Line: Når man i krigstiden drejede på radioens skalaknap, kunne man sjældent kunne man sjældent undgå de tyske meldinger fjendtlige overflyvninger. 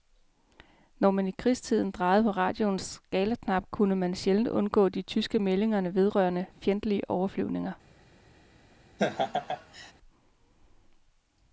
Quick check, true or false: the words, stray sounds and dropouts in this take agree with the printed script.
false